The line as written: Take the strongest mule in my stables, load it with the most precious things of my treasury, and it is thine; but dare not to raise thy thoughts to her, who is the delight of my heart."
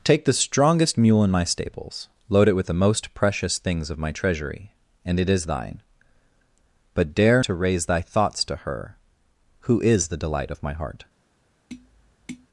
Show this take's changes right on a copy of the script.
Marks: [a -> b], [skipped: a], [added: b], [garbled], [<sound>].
Take the strongest mule in my stables, load it with the most precious things of my treasury, and it is thine; but dare [skipped: not] to raise thy thoughts to her, who is the delight of my heart." [tap]